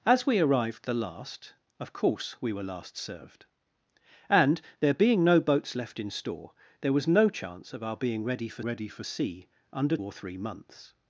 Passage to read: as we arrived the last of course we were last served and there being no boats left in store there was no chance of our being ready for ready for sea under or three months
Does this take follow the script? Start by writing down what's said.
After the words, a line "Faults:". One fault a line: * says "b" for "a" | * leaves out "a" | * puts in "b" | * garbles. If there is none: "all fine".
as we arrived the last of course we were last served and there being no boats left in store there was no chance of our being ready for ready for sea under or three months
Faults:
all fine